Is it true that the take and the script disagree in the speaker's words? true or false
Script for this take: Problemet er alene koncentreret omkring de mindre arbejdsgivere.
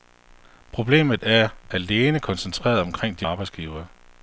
true